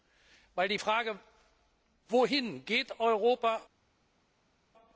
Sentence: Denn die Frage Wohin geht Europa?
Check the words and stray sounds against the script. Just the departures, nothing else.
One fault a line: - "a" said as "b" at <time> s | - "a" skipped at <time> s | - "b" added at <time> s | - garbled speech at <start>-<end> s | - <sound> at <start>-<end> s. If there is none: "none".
none